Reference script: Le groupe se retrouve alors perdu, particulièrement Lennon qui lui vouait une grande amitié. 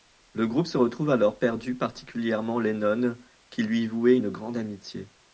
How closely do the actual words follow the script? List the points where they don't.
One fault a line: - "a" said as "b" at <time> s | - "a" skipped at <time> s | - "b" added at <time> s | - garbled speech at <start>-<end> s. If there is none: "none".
none